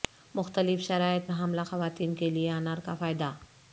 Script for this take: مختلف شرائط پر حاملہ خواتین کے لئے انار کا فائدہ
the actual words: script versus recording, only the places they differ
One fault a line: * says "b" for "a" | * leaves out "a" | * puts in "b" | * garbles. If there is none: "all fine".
* leaves out "پر"